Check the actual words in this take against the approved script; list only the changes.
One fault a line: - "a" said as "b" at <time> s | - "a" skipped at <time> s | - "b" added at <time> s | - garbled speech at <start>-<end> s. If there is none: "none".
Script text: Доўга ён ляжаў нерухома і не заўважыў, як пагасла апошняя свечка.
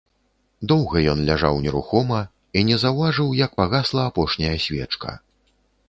none